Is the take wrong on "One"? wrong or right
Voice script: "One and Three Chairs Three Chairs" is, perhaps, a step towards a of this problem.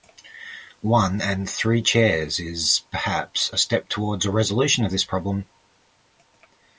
right